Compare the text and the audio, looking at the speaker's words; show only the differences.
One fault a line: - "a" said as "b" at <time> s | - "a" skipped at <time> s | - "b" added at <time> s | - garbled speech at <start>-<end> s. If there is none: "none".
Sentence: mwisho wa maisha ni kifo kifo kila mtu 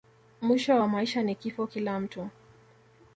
- "kifo" skipped at 1.7 s